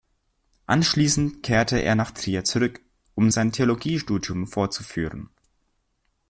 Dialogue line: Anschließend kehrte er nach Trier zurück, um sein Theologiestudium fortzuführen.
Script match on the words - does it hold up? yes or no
yes